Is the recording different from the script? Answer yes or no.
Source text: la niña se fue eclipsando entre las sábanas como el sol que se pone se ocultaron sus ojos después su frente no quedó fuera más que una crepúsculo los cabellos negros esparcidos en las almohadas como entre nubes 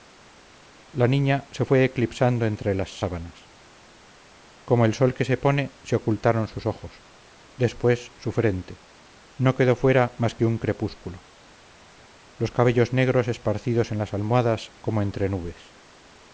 yes